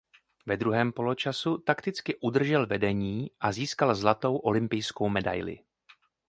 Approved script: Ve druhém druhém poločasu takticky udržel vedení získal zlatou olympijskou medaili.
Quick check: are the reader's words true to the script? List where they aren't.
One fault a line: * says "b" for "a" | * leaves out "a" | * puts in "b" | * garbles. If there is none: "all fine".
* leaves out "druhém"
* puts in "a"